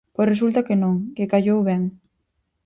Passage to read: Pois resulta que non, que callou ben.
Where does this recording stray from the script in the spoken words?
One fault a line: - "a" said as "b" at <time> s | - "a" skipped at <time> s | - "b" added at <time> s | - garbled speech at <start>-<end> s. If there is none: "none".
none